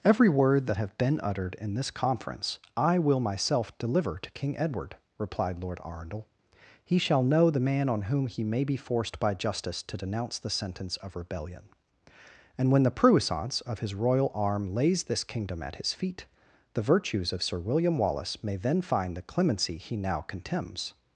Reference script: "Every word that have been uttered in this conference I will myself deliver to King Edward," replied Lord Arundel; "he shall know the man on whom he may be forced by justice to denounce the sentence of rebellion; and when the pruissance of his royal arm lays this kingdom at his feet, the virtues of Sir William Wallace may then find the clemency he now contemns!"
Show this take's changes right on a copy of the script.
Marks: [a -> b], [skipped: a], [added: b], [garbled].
"Every word that have been uttered in this conference I will myself deliver to King Edward," replied Lord Arundel; "he shall know the man on whom he may be forced by justice to denounce the sentence of rebellion; and when the pruissance of his royal arm lays this kingdom at his feet, the virtues of Sir William Wallace may then find the clemency he now contemns!"